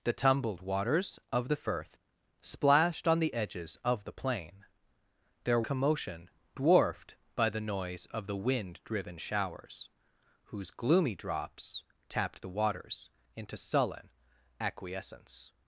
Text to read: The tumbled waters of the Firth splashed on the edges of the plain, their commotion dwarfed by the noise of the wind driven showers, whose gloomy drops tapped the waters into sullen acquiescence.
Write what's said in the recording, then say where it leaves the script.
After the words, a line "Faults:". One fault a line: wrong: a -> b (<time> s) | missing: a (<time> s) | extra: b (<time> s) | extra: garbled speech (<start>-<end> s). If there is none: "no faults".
The tumbled waters of the Firth splashed on the edges of the plain, their commotion dwarfed by the noise of the wind driven showers, whose gloomy drops tapped the waters into sullen acquiescence.
Faults:
no faults